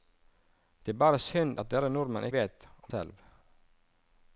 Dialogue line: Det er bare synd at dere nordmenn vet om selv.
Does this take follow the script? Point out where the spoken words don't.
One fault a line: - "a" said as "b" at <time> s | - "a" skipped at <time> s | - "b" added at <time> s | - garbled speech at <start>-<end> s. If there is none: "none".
none